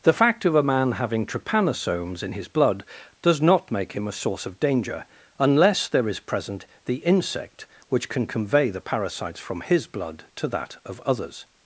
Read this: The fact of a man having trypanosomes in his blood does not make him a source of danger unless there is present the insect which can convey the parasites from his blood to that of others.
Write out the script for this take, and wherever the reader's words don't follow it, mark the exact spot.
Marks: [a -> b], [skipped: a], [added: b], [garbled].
The fact of a man having trypanosomes in his blood does not make him a source of danger unless there is present the insect which can convey the parasites from his blood to that of others.